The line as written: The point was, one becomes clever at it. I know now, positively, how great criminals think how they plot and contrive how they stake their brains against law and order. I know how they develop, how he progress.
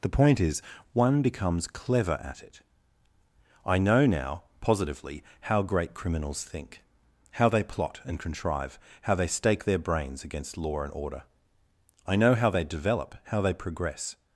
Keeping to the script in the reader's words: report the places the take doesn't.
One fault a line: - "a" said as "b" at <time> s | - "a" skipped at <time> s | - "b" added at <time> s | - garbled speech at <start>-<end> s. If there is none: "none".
- "was" said as "is" at 0.4 s
- "he" said as "they" at 13.4 s